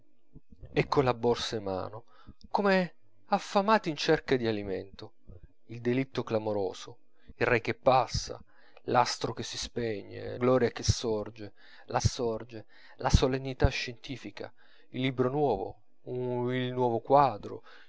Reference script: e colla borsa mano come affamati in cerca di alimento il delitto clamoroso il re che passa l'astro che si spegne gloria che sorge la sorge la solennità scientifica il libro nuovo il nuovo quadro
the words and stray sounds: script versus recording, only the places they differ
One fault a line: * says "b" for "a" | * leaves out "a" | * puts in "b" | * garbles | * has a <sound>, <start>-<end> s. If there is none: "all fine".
all fine